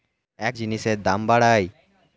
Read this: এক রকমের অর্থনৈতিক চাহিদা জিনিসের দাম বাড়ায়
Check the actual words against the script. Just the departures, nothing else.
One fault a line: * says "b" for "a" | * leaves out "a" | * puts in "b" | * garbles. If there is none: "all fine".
* leaves out "রকমের অর্থনৈতিক চাহিদা"